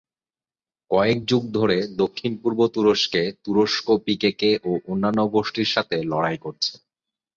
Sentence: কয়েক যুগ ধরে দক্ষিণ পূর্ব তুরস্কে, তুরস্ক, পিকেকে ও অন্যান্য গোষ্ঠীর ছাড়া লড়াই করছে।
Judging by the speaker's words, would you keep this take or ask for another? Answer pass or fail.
fail